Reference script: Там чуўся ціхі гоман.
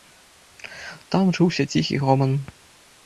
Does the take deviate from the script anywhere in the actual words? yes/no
no